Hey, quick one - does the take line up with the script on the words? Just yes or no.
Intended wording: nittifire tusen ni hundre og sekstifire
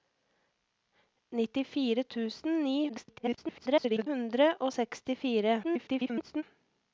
no